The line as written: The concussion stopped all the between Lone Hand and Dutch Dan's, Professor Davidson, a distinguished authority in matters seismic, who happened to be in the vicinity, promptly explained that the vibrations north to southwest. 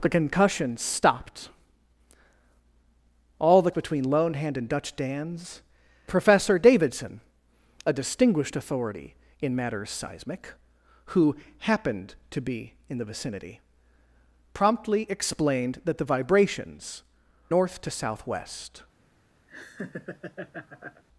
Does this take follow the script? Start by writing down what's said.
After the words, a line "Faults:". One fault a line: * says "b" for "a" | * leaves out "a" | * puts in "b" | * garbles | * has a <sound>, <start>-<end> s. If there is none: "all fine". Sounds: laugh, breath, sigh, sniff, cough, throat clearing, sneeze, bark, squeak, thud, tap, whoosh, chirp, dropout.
The concussion stopped all the between Lone Hand and Dutch Dan's, Professor Davidson, a distinguished authority in matters seismic, who happened to be in the vicinity, promptly explained that the vibrations north to southwest.
Faults:
* has a laugh, 19.5-21.0 s